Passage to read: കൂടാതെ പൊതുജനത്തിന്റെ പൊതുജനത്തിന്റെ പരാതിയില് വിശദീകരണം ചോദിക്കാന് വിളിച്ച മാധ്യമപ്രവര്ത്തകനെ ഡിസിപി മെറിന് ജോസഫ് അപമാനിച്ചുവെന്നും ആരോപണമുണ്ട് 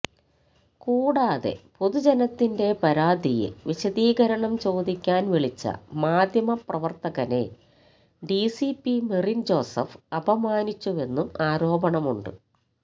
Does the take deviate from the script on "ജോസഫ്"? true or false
false